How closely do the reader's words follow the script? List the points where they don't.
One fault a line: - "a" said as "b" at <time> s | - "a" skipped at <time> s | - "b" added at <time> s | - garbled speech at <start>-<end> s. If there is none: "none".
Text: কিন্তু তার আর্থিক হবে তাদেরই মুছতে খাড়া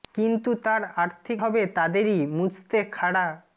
none